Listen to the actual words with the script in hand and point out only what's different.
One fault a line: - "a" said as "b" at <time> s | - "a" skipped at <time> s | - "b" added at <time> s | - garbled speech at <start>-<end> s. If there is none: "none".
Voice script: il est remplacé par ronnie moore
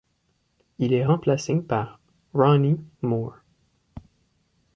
none